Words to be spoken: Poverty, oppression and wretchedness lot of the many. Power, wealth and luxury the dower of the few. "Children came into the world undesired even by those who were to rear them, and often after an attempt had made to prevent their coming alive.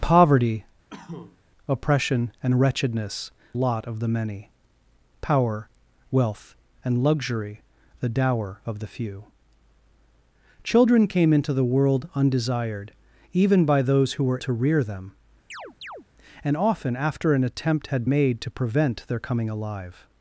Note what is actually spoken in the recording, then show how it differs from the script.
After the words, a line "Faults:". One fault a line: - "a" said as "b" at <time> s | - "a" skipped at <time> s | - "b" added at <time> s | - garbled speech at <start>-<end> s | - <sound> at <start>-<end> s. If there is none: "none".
Poverty, oppression and wretchedness lot of the many. Power, wealth and luxury the dower of the few. "Children came into the world undesired even by those who were to rear them, and often after an attempt had made to prevent their coming alive.
Faults:
- cough at 0.9-1.4 s
- chirp at 15.5-16.1 s